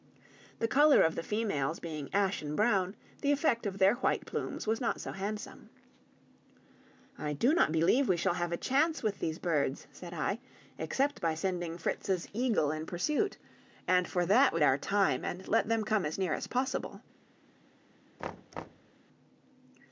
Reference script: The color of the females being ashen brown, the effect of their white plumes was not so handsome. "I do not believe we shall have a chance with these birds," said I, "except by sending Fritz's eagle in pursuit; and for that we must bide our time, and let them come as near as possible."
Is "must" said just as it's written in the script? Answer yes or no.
no